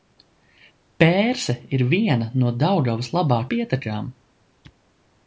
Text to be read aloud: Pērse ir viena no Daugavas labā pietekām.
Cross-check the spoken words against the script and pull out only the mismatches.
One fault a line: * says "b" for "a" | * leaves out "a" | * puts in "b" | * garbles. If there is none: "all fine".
all fine